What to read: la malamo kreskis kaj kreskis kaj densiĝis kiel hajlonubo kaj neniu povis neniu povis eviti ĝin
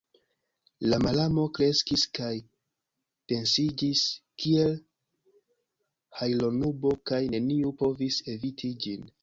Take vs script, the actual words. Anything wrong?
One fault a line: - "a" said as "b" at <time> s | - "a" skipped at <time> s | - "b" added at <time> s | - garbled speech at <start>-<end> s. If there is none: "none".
- "kreskis kaj" skipped at 2.3 s
- "neniu povis" skipped at 8.2 s